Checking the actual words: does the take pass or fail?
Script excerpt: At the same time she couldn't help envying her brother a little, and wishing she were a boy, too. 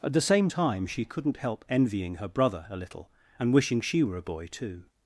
pass